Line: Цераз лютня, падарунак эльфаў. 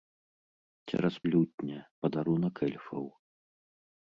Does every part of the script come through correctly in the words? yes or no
yes